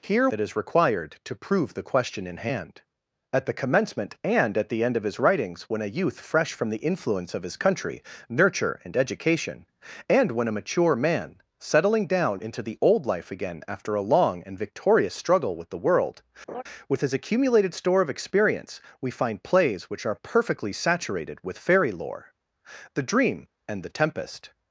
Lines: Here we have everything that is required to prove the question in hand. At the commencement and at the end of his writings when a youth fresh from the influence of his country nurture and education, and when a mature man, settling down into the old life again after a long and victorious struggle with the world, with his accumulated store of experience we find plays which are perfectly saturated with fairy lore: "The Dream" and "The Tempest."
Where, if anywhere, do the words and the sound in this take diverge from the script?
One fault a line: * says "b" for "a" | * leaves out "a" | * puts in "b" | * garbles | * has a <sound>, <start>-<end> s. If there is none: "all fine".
* leaves out "we have everything"
* has a laugh, 16.5-16.6 s